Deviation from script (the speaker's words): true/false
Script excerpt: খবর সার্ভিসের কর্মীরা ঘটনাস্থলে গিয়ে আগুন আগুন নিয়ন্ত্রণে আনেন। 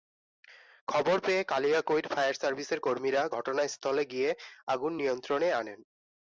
true